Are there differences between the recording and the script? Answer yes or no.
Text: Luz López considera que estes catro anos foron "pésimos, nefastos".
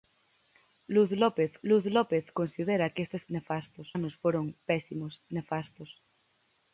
yes